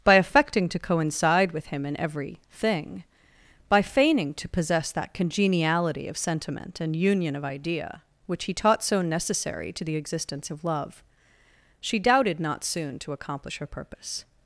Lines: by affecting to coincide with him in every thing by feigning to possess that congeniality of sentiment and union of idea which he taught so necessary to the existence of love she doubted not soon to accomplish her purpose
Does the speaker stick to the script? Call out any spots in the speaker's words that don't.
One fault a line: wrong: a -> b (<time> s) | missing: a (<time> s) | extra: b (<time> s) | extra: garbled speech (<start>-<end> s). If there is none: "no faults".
no faults